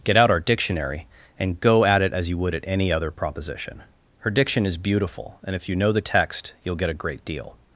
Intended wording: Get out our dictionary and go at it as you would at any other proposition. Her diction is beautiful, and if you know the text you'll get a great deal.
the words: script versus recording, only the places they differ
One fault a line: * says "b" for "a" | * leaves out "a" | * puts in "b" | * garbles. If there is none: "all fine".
all fine